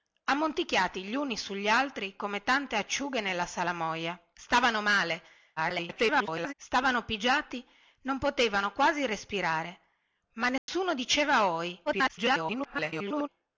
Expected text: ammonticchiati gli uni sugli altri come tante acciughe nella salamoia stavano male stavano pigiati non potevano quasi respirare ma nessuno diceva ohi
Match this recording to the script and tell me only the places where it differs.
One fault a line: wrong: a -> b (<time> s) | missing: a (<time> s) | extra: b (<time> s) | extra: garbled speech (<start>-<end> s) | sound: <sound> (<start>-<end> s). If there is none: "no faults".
extra: garbled speech (5.6-6.5 s)
sound: dropout (10.6-10.7 s)
extra: garbled speech (11.9-13.3 s)